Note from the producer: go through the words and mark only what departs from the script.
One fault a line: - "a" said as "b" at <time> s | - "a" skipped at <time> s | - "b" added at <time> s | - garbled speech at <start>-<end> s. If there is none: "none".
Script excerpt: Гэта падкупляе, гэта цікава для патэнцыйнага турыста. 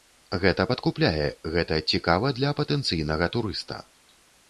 none